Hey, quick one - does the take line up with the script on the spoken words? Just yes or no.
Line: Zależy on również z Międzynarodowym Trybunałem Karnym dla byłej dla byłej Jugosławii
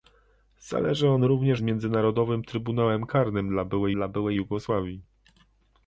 yes